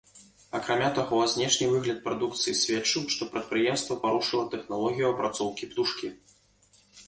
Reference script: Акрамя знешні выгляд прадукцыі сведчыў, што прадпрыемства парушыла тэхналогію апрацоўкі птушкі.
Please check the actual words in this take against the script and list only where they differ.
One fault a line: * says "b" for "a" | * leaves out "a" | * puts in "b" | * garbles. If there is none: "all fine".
* puts in "таго"